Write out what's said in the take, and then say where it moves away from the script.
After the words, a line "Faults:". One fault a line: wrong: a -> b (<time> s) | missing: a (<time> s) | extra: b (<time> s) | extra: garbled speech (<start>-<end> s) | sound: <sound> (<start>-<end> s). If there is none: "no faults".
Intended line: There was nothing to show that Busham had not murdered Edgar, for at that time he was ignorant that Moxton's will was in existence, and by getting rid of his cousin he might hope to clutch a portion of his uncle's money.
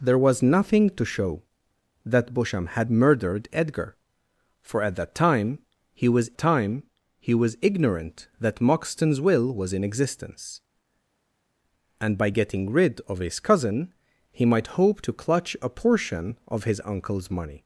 There was nothing to show that Busham had murdered Edgar, for at that time he was time he was ignorant that Moxton's will was in existence, and by getting rid of his cousin he might hope to clutch a portion of his uncle's money.
Faults:
missing: not (2.9 s)
extra: time he was (6.4 s)